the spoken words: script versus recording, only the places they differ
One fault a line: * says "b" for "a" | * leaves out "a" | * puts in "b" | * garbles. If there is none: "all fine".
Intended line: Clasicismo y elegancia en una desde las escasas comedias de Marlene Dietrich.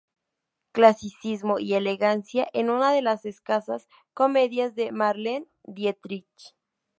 * says "de" for "desde"